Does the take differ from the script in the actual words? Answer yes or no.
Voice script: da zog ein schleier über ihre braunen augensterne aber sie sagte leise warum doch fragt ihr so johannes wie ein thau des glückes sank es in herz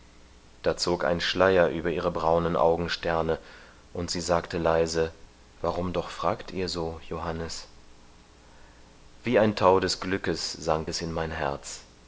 yes